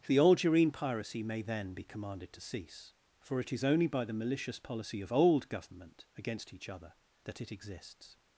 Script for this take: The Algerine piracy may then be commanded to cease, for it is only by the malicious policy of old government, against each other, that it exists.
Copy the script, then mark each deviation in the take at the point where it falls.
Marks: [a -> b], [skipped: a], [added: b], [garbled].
The Algerine piracy may then be commanded to cease, for it is only by the malicious policy of old government, against each other, that it exists.